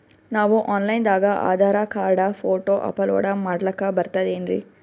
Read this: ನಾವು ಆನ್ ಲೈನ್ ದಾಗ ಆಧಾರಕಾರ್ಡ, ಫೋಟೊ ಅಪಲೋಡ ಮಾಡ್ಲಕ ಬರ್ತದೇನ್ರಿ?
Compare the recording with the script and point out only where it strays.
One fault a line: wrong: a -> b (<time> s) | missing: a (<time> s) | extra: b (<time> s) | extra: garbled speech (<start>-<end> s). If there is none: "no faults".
no faults